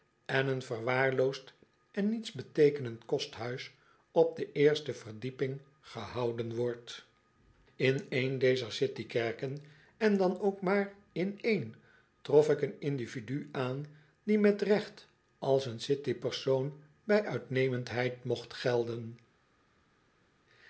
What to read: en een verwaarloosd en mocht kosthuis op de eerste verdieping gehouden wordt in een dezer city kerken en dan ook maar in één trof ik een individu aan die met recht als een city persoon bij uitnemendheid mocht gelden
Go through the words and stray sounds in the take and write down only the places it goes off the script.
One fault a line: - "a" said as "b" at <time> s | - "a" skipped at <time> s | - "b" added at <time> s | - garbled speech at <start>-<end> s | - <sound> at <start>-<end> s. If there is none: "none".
- "mocht" said as "nietsbeteekenend" at 2.1 s